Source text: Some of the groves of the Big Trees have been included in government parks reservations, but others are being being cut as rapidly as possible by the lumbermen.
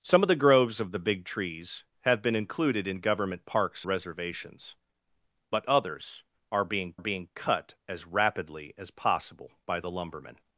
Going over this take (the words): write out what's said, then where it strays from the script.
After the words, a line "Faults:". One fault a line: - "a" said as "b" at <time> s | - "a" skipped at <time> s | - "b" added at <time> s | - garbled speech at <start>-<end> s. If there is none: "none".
Some of the groves of the Big Trees have been included in government parks reservations, but others are being being cut as rapidly as possible by the lumbermen.
Faults:
none